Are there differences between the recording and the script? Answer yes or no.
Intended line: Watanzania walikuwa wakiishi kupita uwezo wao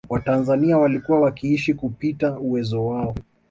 no